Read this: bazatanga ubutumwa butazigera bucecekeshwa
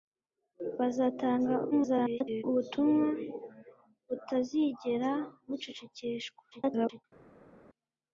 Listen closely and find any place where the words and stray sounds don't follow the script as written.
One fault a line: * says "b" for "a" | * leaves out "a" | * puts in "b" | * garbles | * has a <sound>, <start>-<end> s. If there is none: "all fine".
* garbles
* garbles